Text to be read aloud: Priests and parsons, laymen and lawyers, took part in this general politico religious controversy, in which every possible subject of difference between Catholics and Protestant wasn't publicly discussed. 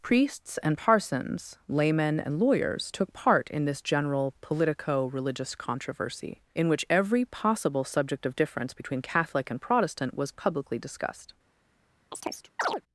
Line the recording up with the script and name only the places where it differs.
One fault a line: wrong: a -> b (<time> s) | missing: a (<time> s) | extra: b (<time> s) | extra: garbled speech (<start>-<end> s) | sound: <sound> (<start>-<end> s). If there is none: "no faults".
wrong: Catholics -> Catholic (9.0 s)
wrong: wasn't -> was (10.1 s)
sound: chirp (12.1-12.8 s)